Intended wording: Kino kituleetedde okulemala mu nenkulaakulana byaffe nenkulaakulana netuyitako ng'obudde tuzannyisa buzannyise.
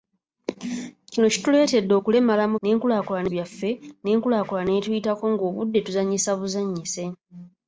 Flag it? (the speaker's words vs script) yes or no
no